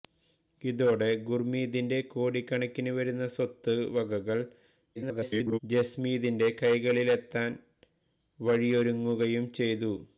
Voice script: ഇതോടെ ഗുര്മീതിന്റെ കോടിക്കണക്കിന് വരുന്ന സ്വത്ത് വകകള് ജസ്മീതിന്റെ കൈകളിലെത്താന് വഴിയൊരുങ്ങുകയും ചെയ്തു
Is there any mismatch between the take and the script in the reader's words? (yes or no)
yes